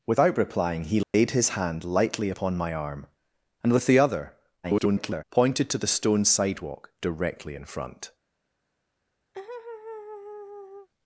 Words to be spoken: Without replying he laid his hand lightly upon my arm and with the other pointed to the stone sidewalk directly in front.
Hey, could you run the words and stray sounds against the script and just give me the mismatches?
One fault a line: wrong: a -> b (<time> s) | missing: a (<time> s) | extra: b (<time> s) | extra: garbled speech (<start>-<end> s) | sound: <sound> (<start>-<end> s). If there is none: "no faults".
sound: dropout (1.0-1.1 s)
extra: garbled speech (4.6-5.2 s)
sound: laugh (9.3-10.9 s)